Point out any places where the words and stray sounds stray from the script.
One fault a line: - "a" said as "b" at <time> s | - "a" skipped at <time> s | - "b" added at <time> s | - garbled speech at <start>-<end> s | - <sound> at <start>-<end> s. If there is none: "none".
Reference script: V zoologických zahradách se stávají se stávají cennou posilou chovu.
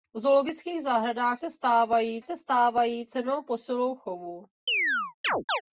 - chirp at 4.7-5.6 s